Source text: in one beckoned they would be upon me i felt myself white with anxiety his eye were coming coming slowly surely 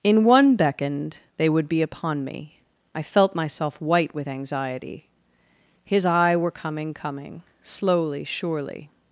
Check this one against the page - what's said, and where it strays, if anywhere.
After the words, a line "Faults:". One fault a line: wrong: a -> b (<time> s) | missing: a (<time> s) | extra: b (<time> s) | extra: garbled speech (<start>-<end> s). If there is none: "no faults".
in one beckoned they would be upon me i felt myself white with anxiety his eye were coming coming slowly surely
Faults:
no faults